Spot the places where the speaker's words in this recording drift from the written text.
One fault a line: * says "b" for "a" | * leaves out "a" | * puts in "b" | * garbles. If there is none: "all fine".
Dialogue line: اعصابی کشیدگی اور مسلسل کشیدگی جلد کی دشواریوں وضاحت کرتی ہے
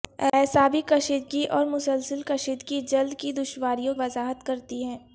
all fine